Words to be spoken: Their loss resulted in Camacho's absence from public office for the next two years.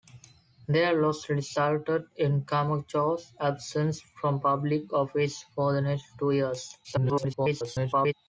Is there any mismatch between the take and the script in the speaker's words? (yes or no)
yes